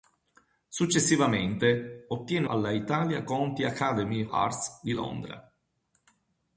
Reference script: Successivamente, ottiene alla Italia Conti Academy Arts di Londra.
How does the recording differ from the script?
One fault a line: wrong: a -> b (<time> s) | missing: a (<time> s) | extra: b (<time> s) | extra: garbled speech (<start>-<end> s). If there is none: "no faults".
no faults